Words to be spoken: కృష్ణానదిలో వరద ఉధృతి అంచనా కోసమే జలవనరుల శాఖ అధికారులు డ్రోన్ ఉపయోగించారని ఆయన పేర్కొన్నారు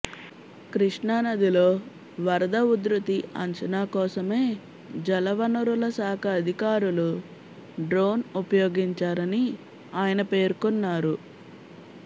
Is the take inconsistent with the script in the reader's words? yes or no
no